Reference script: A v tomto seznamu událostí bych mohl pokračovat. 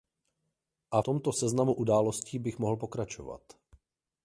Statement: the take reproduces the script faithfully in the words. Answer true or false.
false